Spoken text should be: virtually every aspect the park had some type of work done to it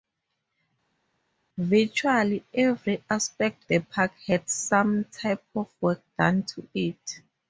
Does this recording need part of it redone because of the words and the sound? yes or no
no